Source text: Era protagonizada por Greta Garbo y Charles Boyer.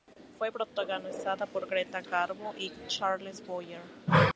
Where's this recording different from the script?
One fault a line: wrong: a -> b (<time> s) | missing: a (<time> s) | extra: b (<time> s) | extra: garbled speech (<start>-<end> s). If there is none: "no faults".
wrong: Era -> Fue (0.4 s)